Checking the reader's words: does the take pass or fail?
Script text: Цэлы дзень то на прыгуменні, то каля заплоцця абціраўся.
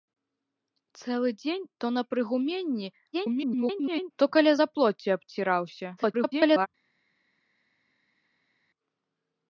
fail